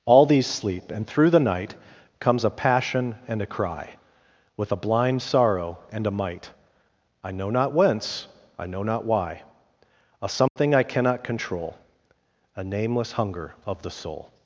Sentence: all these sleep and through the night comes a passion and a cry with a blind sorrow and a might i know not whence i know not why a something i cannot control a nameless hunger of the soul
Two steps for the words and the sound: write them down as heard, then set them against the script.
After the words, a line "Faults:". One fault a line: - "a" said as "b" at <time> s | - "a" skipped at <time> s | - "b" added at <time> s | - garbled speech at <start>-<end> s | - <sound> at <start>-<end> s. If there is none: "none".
all these sleep and through the night comes a passion and a cry with a blind sorrow and a might i know not whence i know not why a something i cannot control a nameless hunger of the soul
Faults:
- dropout at 10.5-10.6 s